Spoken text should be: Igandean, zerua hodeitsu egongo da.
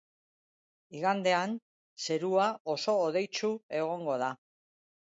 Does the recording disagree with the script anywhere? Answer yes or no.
yes